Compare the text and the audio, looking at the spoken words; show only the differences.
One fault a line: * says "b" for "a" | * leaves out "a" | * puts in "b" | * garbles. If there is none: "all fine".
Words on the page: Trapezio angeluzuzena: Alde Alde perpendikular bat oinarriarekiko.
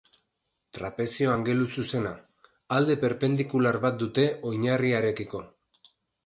* leaves out "Alde"
* puts in "dute"